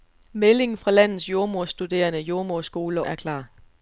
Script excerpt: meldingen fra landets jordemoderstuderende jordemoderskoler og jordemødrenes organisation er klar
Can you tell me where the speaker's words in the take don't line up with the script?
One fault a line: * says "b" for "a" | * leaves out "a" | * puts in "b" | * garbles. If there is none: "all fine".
* leaves out "og jordemødrenes organisation"